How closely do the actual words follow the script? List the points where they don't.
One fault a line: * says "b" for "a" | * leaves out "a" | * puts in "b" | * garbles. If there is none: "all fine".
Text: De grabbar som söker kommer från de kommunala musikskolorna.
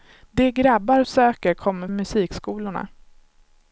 * leaves out "som"
* leaves out "från de kommunala"